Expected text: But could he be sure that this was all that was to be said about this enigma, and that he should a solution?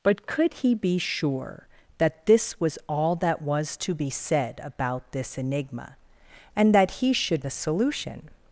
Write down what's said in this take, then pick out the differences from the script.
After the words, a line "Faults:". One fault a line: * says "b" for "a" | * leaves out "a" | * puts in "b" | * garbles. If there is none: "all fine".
But could he be sure that this was all that was to be said about this enigma, and that he should a solution?
Faults:
all fine